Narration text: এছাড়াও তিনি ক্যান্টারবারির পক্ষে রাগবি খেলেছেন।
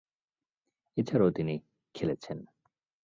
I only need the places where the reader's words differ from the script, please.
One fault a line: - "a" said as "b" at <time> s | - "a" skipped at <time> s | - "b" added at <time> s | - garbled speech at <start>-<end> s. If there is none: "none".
- "ক্যান্টারবারির পক্ষে রাগবি" skipped at 1.6 s